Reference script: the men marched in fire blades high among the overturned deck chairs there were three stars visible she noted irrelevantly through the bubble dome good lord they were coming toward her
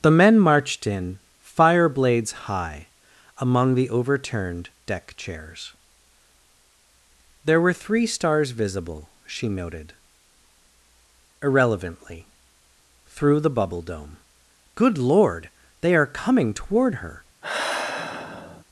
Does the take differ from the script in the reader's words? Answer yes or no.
yes